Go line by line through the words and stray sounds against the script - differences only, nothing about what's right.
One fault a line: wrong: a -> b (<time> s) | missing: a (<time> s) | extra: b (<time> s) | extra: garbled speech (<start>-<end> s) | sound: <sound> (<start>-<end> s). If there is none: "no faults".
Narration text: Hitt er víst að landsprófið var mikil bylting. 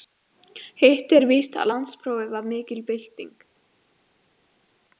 no faults